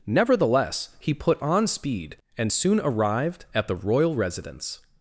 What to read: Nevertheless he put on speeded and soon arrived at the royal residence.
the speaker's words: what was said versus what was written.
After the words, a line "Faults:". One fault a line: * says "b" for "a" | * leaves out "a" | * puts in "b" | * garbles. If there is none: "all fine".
Nevertheless he put on speed and soon arrived at the royal residence.
Faults:
* says "speed" for "speeded"